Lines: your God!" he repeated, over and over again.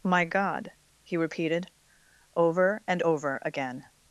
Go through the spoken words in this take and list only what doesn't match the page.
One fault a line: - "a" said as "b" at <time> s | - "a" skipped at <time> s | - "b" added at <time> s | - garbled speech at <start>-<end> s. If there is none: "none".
- "your" said as "my" at 0.0 s